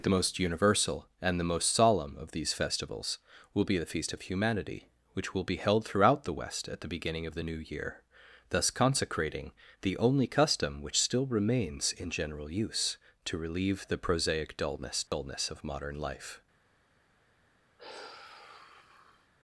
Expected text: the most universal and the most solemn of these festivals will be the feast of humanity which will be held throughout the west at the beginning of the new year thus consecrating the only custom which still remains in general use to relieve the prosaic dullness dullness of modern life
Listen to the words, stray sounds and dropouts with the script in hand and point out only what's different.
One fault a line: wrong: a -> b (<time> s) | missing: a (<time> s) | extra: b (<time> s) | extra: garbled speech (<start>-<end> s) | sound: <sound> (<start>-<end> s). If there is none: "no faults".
sound: dropout (15.1-15.1 s)
sound: sigh (17.8-19.3 s)